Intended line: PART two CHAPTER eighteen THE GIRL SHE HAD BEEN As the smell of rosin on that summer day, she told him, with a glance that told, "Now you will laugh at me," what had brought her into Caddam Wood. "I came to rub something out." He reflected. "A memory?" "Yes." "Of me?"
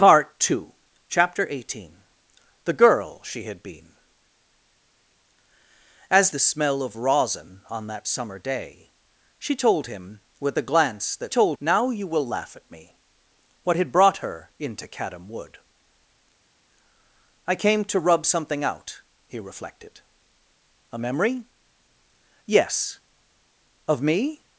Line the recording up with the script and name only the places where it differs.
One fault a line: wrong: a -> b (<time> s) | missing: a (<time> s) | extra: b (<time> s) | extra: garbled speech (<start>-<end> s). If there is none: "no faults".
no faults